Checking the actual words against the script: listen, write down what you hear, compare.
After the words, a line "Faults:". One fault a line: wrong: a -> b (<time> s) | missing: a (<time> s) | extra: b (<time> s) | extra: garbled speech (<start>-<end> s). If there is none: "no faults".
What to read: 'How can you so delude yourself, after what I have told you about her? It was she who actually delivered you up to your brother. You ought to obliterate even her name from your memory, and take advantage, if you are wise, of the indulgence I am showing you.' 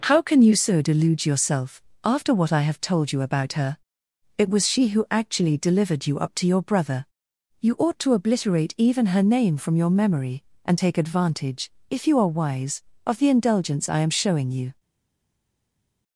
'How can you so delude yourself, after what I have told you about her? It was she who actually delivered you up to your brother. You ought to obliterate even her name from your memory, and take advantage, if you are wise, of the indulgence I am showing you.'
Faults:
no faults